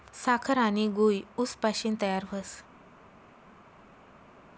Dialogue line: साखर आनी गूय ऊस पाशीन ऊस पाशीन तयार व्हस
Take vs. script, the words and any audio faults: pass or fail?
fail